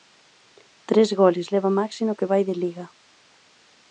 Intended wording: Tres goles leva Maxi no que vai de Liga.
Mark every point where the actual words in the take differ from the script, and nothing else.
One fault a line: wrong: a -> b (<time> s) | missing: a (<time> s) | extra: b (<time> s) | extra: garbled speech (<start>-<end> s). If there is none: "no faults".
no faults